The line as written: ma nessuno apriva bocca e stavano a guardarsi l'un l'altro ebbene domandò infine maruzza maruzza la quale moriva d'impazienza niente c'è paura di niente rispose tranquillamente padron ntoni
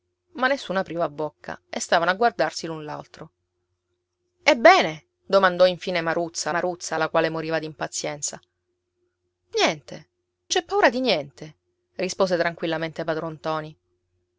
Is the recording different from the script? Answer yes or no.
no